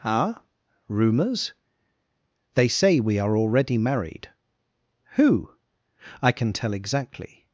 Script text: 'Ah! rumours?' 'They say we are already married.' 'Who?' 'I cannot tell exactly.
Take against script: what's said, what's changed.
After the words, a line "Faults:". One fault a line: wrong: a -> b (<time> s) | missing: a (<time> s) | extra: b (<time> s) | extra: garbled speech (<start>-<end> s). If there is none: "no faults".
'Ah! rumours?' 'They say we are already married.' 'Who?' 'I can tell exactly.
Faults:
wrong: cannot -> can (6.3 s)